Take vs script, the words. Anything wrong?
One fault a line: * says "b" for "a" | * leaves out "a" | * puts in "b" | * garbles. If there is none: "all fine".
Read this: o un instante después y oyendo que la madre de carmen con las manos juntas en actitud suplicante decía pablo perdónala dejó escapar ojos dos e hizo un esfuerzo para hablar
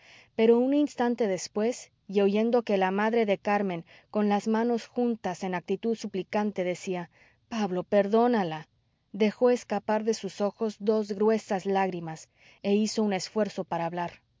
* says "pero" for "o"
* puts in "de sus"
* puts in "gruesas lágrimas"